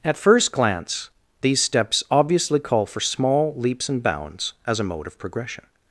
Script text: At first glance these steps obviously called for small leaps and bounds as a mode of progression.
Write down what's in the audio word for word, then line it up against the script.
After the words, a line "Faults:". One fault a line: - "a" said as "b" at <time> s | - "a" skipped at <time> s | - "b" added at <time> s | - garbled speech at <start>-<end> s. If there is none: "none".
At first glance these steps obviously call for small leaps and bounds as a mode of progression.
Faults:
- "called" said as "call" at 2.6 s